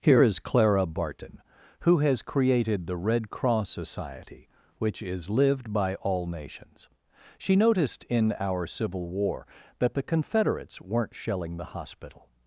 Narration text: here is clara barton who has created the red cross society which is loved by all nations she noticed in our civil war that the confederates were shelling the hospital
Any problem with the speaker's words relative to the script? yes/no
yes